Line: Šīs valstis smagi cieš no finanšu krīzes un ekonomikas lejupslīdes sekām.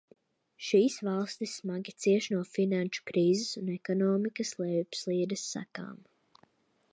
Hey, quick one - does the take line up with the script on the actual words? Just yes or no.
yes